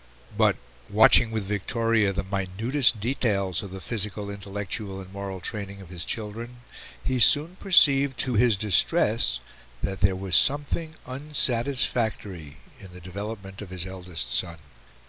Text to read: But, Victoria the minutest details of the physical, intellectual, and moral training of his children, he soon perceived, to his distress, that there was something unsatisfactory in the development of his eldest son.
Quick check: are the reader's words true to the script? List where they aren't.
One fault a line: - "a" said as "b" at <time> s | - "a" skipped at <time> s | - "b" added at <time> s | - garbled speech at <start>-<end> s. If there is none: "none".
- "watching with" added at 0.9 s